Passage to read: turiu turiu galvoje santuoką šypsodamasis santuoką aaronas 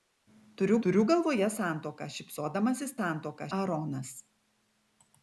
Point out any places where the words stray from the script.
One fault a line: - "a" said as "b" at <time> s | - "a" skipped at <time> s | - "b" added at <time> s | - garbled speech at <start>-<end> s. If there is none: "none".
none